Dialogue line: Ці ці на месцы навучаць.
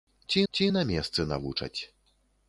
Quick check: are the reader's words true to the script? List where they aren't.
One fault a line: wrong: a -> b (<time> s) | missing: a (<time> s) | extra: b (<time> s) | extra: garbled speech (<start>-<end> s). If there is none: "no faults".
no faults